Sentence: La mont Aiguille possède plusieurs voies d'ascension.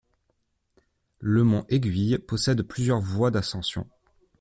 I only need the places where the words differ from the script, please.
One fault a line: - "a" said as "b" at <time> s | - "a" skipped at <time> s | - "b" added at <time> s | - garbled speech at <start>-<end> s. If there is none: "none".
- "La" said as "Le" at 1.2 s